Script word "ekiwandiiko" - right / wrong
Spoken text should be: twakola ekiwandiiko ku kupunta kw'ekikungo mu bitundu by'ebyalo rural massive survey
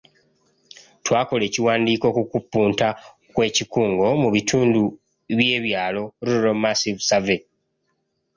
right